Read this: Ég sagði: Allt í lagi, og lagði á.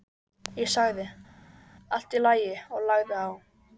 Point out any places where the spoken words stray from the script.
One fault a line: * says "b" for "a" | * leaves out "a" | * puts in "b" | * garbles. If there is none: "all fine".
all fine